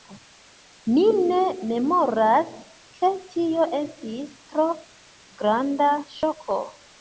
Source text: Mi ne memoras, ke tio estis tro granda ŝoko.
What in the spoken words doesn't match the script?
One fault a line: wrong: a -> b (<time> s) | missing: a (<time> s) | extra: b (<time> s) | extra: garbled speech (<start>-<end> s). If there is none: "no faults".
no faults